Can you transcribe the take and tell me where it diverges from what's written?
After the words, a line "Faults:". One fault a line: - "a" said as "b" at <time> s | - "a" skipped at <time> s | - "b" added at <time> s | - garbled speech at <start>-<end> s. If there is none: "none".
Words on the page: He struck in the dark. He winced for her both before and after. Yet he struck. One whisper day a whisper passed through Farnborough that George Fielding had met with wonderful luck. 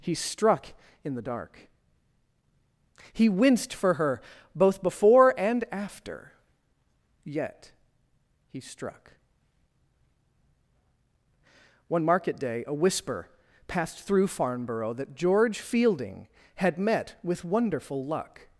He struck in the dark. He winced for her both before and after. Yet he struck. One market day a whisper passed through Farnborough that George Fielding had met with wonderful luck.
Faults:
- "whisper" said as "market" at 12.0 s